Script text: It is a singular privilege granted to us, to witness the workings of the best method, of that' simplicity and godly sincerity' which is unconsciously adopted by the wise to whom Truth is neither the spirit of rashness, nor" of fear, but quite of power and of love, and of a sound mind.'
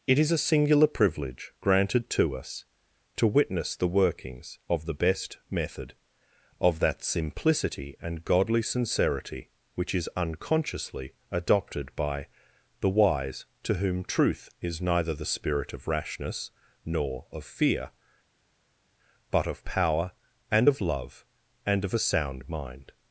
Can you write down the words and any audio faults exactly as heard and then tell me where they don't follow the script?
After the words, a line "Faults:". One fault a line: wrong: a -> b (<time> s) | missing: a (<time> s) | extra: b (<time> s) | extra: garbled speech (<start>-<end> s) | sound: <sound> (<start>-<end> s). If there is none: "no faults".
It is a singular privilege granted to us, to witness the workings of the best method, of that' simplicity and godly sincerity' which is unconsciously adopted by the wise to whom Truth is neither the spirit of rashness, nor" of fear, but of power and of love, and of a sound mind.'
Faults:
missing: quite (19.5 s)